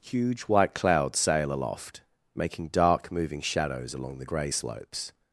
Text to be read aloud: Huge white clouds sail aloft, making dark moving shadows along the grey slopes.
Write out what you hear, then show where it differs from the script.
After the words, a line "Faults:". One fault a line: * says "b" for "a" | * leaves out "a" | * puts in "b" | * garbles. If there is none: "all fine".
Huge white clouds sail aloft, making dark moving shadows along the grey slopes.
Faults:
all fine